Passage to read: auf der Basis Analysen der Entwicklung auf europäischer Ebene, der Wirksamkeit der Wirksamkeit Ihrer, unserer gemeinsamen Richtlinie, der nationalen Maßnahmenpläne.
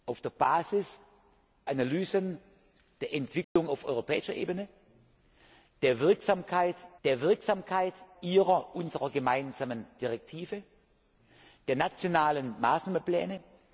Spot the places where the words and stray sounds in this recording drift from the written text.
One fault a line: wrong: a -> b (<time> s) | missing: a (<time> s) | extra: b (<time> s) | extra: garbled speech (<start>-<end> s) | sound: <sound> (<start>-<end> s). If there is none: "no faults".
sound: dropout (3.4-3.6 s)